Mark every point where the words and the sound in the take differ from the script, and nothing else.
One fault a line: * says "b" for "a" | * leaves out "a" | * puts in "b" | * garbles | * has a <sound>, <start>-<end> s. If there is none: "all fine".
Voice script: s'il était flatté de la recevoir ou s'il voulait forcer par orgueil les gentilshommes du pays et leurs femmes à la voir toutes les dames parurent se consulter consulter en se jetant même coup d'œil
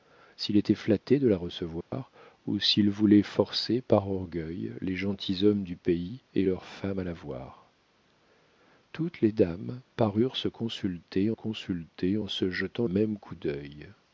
* has a dropout, 1.8-1.9 s